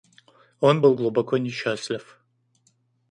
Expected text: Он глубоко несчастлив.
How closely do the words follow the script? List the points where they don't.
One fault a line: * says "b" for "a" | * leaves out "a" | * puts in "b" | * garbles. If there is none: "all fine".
* puts in "был"